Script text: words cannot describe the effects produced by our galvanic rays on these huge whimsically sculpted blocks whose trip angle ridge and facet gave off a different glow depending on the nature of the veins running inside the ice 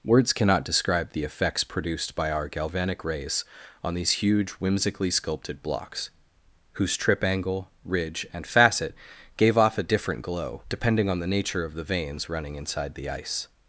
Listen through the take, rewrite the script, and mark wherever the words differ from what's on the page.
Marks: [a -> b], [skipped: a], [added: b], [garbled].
words cannot describe the effects produced by our galvanic rays on these huge whimsically sculpted blocks whose trip angle ridge and facet gave off a different glow depending on the nature of the veins running inside the ice